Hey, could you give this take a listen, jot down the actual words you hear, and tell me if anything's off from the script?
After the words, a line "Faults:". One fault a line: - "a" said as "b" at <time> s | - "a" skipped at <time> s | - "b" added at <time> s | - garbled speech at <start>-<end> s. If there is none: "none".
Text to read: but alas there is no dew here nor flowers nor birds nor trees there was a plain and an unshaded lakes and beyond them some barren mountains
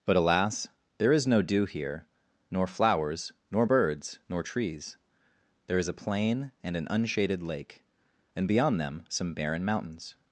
but alas there is no dew here nor flowers nor birds nor trees there is a plain and an unshaded lake and beyond them some barren mountains
Faults:
- "was" said as "is" at 5.8 s
- "lakes" said as "lake" at 7.4 s